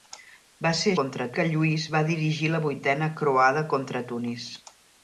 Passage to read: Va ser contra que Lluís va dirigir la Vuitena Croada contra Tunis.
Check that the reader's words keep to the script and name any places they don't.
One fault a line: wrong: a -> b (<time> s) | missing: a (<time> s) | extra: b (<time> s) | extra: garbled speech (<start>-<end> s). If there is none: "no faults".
no faults